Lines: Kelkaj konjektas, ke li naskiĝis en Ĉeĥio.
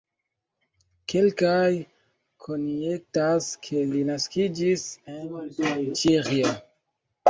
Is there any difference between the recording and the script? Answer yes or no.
no